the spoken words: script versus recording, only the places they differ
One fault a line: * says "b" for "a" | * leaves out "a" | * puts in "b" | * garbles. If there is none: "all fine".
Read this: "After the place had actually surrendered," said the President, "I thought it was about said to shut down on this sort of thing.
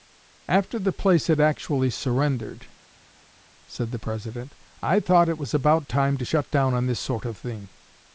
* says "time" for "said"